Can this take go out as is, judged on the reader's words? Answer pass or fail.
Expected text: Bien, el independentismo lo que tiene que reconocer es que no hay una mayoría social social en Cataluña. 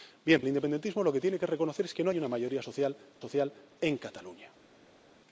pass